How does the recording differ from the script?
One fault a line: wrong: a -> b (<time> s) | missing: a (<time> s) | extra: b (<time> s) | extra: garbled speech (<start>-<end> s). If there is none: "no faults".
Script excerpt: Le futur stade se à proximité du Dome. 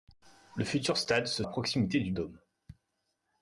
no faults